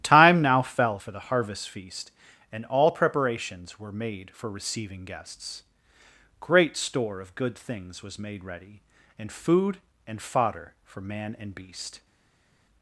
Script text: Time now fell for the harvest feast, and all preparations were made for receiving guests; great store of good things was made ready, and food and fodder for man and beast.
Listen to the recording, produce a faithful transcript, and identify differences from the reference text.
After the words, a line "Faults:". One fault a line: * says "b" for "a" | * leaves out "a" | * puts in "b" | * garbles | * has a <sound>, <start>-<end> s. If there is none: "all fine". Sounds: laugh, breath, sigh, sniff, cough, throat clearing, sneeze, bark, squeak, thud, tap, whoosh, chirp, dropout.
Time now fell for the harvest feast, and all preparations were made for receiving guests; great store of good things was made ready, and food and fodder for man and beast.
Faults:
all fine